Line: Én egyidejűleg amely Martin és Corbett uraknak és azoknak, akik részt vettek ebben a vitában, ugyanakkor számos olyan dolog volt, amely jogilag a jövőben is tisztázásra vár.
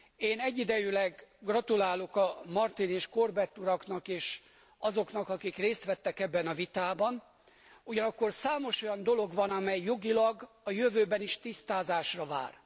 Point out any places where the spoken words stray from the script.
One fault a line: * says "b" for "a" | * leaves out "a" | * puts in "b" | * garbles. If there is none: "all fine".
* says "gratulálok" for "amely"
* says "van" for "volt"